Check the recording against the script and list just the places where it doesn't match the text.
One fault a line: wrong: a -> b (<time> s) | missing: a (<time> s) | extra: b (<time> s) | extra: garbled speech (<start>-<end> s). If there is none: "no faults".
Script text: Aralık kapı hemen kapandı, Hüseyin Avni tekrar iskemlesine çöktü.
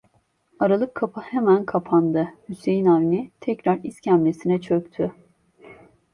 no faults